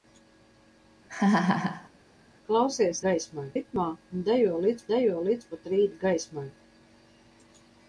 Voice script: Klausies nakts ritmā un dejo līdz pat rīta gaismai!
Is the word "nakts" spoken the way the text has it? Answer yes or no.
no